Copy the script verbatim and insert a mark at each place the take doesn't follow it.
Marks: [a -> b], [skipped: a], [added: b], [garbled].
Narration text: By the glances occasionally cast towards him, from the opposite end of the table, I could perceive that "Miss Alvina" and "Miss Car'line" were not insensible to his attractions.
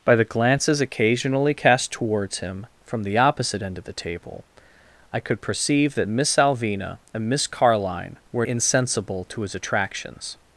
By the glances occasionally cast towards him, from the opposite end of the table, I could perceive that "Miss Alvina" and "Miss Car'line" were [skipped: not] insensible to his attractions.